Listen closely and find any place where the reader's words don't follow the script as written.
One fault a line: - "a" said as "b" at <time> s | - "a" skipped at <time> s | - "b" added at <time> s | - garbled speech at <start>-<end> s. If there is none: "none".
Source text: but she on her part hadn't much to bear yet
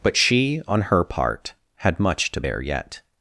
- "hadn't" said as "had" at 1.8 s